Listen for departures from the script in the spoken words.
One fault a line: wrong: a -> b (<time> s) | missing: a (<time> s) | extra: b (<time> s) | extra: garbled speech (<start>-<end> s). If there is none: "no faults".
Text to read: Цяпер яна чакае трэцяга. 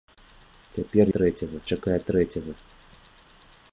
wrong: яна -> трэцяга (1.2 s)